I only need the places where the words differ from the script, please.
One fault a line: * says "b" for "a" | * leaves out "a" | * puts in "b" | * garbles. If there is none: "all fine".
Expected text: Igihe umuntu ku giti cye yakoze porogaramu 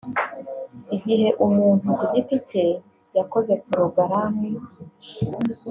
all fine